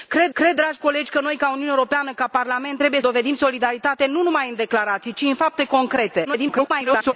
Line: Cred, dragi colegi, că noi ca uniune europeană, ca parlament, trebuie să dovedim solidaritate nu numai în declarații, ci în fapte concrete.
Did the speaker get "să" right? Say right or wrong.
wrong